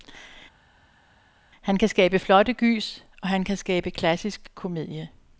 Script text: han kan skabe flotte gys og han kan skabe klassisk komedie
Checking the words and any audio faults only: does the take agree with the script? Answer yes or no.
yes